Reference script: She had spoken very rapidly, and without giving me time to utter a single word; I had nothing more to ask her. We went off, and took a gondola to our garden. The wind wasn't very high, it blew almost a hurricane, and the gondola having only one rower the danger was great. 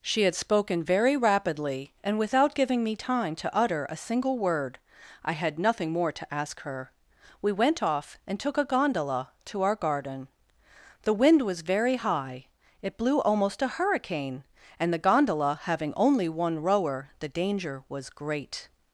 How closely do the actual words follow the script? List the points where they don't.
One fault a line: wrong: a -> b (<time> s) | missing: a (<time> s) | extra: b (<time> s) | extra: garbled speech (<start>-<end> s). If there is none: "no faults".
wrong: wasn't -> was (11.4 s)